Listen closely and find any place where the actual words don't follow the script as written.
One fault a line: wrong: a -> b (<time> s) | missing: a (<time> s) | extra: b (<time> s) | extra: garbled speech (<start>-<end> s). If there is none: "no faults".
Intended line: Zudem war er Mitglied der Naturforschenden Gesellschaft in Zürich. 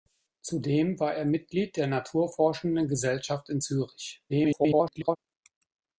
extra: garbled speech (4.3-5.2 s)